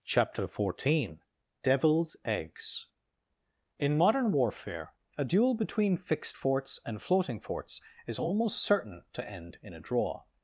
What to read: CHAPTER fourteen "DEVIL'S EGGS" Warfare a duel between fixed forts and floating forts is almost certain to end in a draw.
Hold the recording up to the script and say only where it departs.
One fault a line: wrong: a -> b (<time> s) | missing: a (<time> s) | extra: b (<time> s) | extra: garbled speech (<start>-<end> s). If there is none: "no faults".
extra: In modern (3.8 s)